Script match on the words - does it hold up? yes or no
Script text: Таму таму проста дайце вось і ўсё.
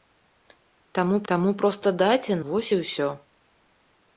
yes